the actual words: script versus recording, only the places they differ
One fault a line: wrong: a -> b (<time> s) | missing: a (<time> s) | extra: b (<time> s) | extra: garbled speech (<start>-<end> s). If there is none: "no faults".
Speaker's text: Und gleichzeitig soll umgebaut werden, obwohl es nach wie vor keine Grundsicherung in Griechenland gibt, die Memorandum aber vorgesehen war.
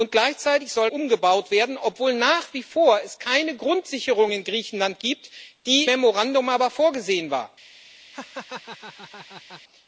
no faults